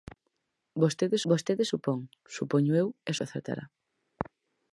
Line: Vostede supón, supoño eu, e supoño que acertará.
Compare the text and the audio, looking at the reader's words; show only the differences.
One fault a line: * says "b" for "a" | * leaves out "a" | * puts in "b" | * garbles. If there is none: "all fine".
* puts in "vostede"
* leaves out "supoño"